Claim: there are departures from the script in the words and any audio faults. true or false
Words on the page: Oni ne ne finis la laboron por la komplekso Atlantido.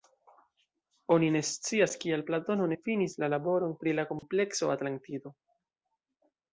true